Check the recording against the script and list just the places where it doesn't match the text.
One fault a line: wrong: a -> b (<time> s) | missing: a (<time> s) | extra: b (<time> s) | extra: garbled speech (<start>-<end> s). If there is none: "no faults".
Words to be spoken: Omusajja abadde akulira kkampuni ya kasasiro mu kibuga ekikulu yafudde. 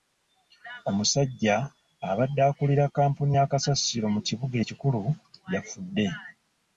no faults